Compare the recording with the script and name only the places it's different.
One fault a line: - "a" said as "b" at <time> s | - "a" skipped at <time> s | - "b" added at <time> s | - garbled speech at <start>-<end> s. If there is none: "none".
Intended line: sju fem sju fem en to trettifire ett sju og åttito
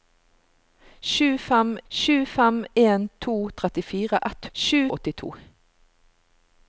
none